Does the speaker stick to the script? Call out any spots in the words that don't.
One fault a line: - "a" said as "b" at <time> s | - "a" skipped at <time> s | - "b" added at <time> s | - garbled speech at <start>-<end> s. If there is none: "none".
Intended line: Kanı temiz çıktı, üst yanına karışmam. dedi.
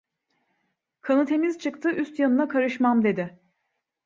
none